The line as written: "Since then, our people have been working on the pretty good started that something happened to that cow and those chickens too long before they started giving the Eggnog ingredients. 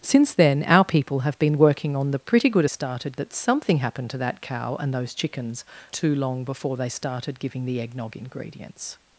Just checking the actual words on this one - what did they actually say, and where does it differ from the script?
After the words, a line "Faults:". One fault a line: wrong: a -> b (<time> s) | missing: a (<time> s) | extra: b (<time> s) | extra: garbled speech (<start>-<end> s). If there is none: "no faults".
"Since then, our people have been working on the pretty good started that something happened to that cow and those chickens too long before they started giving the Eggnog ingredients.
Faults:
no faults